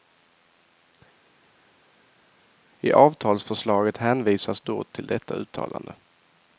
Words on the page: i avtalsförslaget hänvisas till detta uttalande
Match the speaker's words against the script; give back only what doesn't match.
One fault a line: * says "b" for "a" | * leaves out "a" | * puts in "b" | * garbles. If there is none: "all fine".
* puts in "då"